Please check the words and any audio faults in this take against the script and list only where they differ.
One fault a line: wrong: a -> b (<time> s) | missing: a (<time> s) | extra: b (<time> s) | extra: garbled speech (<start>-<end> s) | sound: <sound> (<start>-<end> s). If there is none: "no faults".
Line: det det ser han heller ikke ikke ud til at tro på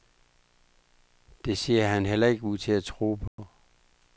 missing: det (1.6 s)
missing: ikke (2.4 s)
sound: dropout (3.3-3.4 s)